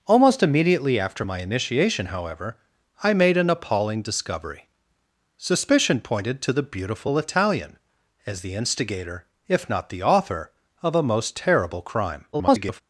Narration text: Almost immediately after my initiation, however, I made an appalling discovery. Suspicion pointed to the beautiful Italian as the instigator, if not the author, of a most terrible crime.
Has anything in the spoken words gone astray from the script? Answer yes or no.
yes